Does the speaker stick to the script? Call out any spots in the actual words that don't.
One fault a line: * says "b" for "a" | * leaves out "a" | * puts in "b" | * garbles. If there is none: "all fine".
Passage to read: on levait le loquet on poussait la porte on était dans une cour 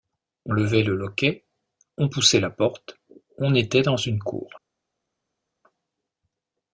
all fine